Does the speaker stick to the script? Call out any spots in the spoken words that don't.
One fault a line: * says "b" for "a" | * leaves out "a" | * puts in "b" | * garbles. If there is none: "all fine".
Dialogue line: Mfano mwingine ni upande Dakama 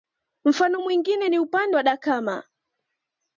* puts in "wa"